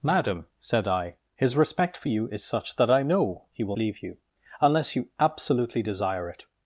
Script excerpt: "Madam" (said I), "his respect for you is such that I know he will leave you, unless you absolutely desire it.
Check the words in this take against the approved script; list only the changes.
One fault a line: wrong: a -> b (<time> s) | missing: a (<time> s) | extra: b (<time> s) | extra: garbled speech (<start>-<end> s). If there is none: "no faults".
no faults